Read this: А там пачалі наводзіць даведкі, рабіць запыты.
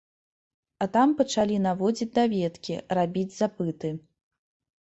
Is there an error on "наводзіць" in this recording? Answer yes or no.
no